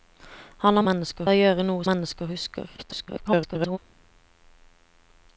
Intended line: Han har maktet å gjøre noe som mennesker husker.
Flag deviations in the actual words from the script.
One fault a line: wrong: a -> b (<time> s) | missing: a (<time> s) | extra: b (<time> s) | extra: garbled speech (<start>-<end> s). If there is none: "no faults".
wrong: maktet -> mennesker (0.9 s)
missing: som (1.9 s)
extra: garbled speech (2.8-3.8 s)